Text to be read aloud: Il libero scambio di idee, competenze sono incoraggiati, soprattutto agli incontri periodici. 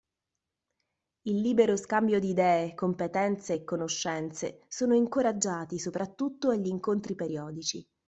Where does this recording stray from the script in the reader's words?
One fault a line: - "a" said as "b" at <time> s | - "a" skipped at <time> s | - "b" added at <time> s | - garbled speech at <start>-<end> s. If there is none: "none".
- "e conoscenze" added at 3.5 s